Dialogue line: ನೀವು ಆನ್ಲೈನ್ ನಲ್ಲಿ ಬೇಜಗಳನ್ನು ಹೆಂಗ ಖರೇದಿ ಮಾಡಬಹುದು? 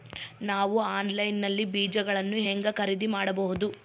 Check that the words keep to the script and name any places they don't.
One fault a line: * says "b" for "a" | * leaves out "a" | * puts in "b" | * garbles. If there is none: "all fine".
* says "ನಾವು" for "ನೀವು"